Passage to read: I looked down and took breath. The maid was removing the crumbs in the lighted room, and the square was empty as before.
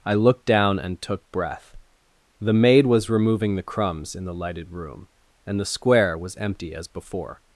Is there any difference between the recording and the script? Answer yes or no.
no